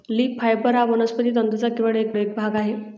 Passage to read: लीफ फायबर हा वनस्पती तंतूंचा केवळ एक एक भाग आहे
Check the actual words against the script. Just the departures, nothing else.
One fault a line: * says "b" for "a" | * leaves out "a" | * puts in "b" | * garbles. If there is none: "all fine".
all fine